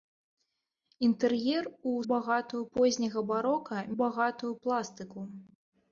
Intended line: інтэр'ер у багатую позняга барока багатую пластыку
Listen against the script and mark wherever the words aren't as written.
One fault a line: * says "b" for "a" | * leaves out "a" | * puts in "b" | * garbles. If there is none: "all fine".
all fine